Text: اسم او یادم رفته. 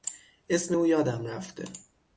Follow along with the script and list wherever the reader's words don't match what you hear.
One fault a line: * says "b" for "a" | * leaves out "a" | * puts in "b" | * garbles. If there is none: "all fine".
all fine